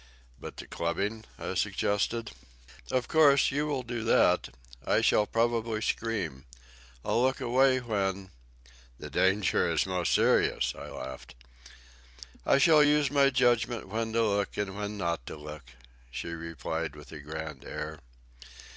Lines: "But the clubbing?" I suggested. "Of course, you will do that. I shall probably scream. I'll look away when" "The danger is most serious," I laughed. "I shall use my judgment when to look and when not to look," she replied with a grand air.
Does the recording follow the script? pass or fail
pass